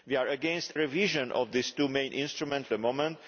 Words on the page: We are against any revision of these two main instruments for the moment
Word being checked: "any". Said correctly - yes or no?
no